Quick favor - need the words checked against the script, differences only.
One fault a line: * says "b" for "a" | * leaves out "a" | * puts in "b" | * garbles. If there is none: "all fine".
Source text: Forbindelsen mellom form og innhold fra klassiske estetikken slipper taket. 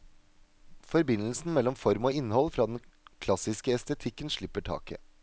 * puts in "den"